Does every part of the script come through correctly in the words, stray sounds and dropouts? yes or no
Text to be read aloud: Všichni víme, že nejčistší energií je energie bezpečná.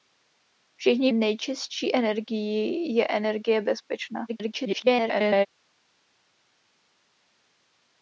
no